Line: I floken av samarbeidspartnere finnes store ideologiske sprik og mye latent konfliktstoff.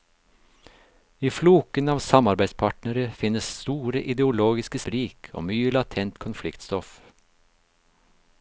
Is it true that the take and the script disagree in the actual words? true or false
false